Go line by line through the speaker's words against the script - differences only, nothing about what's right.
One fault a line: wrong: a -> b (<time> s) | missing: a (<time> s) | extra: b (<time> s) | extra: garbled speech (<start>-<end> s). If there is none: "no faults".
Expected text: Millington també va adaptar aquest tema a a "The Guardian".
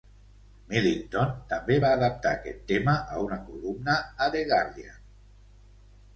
extra: una columna (3.3 s)